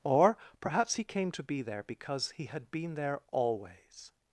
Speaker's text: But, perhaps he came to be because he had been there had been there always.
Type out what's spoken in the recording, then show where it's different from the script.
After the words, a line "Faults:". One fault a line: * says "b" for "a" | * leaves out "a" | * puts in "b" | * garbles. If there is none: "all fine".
Or, perhaps he came to be there because he had been there always.
Faults:
* says "Or" for "But"
* puts in "there"
* leaves out "had been there"